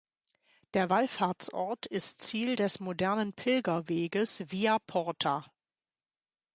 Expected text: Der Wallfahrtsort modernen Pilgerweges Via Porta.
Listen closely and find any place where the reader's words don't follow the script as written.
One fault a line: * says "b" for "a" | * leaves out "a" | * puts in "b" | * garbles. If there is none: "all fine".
* puts in "ist Ziel des"